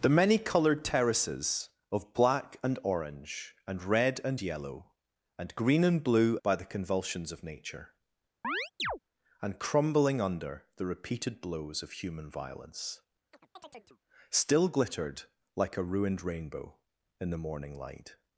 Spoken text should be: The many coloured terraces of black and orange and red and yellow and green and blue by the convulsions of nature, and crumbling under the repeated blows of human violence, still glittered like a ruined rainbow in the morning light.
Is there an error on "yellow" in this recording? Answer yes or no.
no